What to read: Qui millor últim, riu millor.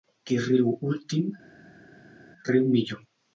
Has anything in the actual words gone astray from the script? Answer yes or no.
yes